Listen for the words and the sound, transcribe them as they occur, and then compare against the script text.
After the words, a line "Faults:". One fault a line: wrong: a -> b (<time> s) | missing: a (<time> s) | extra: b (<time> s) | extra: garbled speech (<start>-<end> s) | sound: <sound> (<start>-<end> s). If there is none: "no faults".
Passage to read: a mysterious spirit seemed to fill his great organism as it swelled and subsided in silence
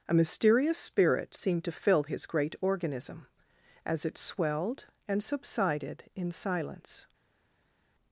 a mysterious spirit seemed to fill his great organism as it swelled and subsided in silence
Faults:
no faults